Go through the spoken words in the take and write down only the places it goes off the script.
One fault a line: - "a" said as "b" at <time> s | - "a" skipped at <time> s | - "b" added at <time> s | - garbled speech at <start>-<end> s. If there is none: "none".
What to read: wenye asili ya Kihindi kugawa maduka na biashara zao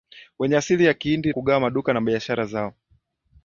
none